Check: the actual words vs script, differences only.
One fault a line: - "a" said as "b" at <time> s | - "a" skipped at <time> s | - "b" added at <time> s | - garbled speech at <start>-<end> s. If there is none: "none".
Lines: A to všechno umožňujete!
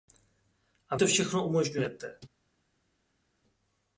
none